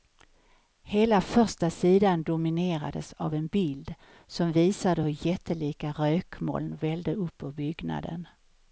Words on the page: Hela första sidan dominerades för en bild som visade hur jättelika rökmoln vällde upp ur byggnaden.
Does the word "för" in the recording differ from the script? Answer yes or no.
yes